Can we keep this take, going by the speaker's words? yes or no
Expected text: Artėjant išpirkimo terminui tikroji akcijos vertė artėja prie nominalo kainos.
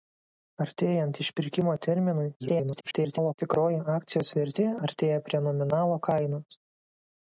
no